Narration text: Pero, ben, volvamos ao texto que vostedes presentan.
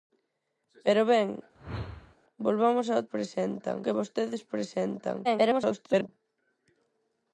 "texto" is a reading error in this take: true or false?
true